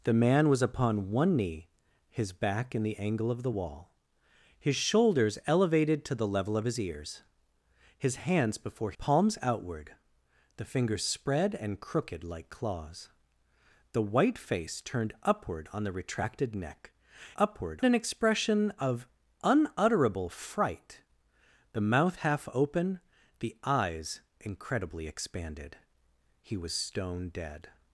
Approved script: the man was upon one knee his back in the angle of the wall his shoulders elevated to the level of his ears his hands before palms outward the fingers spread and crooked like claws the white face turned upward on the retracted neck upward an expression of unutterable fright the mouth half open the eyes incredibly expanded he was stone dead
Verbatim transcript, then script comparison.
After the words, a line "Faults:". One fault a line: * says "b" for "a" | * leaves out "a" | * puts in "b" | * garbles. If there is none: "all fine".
the man was upon one knee his back in the angle of the wall his shoulders elevated to the level of his ears his hands before palms outward the fingers spread and crooked like claws the white face turned upward on the retracted neck upward an expression of unutterable fright the mouth half open the eyes incredibly expanded he was stone dead
Faults:
all fine